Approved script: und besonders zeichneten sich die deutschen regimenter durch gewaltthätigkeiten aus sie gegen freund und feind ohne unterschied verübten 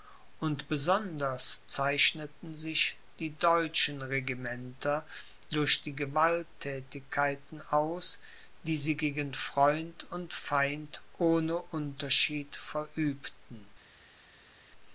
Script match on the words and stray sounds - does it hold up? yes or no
no